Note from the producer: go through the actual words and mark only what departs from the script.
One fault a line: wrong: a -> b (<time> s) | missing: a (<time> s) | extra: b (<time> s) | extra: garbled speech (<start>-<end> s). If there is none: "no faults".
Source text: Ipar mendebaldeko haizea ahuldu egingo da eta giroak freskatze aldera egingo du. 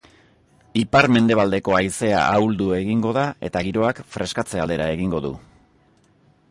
no faults